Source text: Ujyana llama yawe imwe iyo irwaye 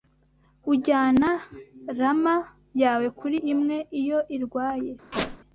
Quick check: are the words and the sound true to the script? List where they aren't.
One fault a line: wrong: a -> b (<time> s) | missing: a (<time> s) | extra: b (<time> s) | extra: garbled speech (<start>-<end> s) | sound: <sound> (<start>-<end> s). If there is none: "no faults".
extra: kuri (3.2 s)
sound: squeak (5.1-5.4 s)